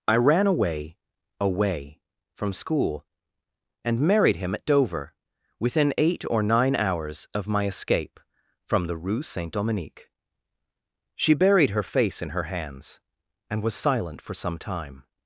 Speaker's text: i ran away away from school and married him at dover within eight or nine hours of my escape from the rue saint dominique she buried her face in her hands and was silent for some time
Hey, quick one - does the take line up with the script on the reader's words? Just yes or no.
yes